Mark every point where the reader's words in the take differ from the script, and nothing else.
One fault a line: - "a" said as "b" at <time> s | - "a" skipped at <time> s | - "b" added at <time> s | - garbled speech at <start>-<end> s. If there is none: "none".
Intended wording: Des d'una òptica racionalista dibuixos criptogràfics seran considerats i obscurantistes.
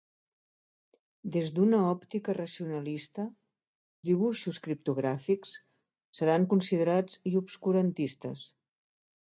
none